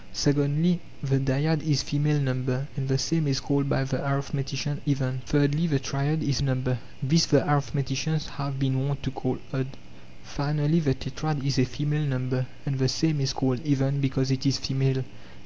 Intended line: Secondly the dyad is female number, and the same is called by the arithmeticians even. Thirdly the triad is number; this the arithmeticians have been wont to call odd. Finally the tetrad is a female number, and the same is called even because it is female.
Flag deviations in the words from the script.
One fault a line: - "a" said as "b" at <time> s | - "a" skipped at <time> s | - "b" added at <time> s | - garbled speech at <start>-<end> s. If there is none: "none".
none